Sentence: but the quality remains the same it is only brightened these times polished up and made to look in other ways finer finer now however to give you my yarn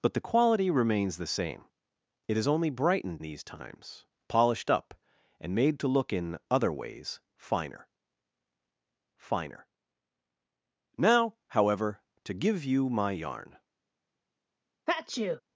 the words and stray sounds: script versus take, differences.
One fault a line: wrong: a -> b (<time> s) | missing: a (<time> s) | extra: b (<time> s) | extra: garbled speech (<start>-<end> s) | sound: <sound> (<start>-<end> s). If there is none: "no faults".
sound: sneeze (14.9-15.4 s)